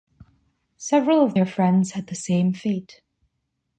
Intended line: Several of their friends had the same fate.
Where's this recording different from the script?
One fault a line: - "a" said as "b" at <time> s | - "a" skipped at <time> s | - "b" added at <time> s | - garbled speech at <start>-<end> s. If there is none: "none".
none